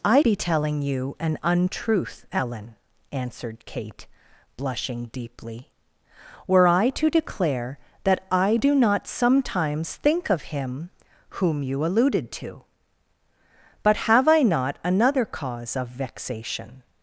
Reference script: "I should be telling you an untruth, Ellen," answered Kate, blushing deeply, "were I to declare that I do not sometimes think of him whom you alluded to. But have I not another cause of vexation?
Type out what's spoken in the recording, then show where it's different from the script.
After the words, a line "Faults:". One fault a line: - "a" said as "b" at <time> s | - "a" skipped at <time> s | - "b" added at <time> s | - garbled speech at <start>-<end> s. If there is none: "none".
"I be telling you an untruth, Ellen," answered Kate, blushing deeply, "were I to declare that I do not sometimes think of him whom you alluded to. But have I not another cause of vexation?
Faults:
- "should" skipped at 0.2 s